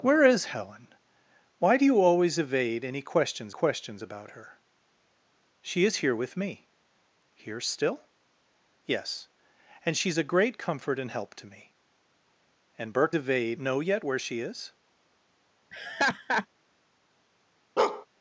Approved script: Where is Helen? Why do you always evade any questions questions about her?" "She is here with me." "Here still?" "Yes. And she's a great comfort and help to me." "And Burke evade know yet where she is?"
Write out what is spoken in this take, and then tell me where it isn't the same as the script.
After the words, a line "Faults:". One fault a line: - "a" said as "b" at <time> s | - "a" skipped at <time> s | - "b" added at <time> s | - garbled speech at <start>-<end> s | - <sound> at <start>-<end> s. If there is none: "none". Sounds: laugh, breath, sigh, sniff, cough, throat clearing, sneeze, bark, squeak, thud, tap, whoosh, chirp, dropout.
Where is Helen? Why do you always evade any questions questions about her?" "She is here with me." "Here still?" "Yes. And she's a great comfort and help to me." "And Burke evade know yet where she is?"
Faults:
- laugh at 15.7-16.5 s
- bark at 17.8-18.1 s